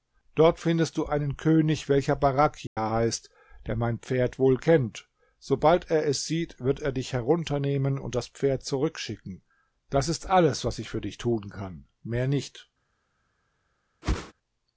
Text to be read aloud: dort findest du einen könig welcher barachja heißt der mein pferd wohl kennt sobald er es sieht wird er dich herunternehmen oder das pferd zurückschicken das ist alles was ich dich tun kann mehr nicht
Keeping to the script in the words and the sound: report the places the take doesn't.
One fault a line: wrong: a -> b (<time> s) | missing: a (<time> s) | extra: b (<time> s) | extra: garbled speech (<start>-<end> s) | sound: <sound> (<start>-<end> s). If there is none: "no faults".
sound: dropout (2.7-2.8 s)
wrong: oder -> und (8.0 s)
extra: für (10.9 s)
sound: whoosh (14.0-14.3 s)